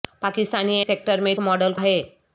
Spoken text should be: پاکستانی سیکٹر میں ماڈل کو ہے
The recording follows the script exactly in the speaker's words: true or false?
true